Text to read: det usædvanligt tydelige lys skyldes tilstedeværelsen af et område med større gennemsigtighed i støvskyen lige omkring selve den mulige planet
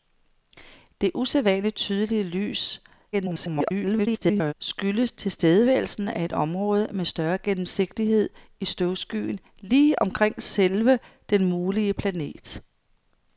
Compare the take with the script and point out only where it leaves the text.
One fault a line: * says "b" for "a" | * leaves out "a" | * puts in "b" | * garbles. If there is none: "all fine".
* garbles